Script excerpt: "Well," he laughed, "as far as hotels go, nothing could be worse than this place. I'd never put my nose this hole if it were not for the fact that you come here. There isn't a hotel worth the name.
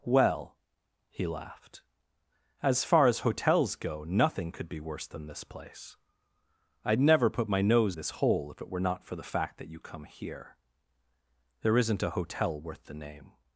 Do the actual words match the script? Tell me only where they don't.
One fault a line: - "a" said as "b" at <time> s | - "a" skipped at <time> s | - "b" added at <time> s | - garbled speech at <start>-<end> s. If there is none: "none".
none